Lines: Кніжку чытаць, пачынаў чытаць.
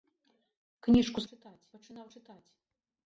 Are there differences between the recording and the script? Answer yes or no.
no